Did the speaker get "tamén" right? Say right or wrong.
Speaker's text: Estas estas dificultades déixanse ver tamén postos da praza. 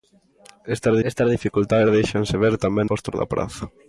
right